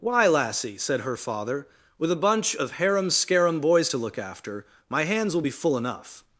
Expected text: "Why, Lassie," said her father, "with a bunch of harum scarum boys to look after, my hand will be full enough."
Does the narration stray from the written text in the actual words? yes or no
yes